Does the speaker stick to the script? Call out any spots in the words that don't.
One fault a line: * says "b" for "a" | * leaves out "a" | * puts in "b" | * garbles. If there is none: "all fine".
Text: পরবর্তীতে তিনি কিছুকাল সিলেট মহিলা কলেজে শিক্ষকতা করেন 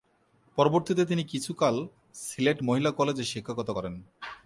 all fine